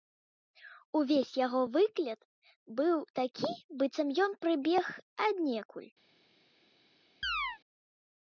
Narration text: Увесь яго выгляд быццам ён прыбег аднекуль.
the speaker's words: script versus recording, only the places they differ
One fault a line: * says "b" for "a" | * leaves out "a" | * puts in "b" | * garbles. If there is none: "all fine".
* puts in "быў такі"